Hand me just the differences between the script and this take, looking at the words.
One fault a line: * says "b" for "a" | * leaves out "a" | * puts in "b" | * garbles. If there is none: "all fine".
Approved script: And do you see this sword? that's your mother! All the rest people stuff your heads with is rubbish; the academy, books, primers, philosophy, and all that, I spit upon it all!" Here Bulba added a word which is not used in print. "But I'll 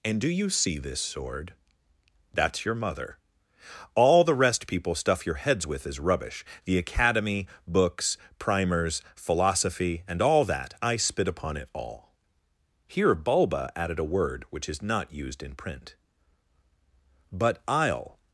all fine